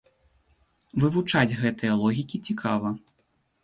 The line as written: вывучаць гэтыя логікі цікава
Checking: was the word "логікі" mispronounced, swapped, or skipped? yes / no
no